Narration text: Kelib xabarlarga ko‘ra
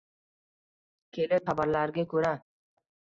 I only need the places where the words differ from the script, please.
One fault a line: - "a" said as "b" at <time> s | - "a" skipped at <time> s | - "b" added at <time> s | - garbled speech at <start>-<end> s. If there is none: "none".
none